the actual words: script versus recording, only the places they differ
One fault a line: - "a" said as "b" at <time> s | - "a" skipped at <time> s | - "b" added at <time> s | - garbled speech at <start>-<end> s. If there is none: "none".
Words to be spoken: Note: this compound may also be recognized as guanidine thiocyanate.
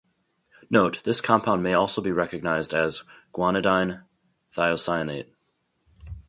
none